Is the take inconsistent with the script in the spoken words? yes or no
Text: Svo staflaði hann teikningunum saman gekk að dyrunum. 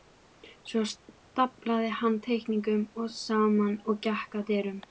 yes